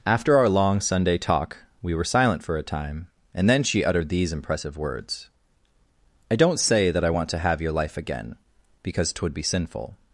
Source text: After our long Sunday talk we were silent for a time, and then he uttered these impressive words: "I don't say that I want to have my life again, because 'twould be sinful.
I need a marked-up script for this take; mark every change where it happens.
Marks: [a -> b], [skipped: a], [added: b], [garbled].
After our long Sunday talk we were silent for a time, and then [he -> she] uttered these impressive words: "I don't say that I want to have [my -> your] life again, because 'twould be sinful.